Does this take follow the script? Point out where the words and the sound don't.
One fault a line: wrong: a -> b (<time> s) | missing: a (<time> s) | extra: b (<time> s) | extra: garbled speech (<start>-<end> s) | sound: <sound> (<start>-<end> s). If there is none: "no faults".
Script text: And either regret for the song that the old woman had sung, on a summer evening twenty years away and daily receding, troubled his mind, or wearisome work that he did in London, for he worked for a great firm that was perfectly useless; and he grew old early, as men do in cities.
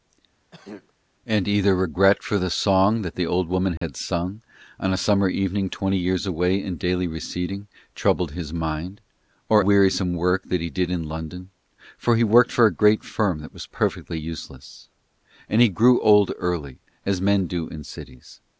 sound: throat clearing (0.5-0.9 s)
sound: dropout (3.8-3.8 s)